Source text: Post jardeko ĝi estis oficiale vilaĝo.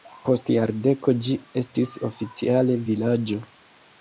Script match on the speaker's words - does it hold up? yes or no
yes